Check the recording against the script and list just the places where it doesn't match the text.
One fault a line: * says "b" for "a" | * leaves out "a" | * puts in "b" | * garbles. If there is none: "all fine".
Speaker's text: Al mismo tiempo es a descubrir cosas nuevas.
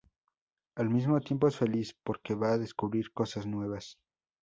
* puts in "feliz porque va"